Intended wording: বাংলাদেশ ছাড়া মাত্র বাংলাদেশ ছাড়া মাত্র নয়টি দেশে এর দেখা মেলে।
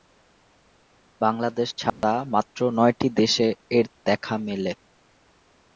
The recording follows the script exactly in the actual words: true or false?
false